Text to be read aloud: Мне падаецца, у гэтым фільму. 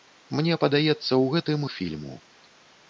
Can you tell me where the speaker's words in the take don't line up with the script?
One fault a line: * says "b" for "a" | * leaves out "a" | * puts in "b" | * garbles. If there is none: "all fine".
all fine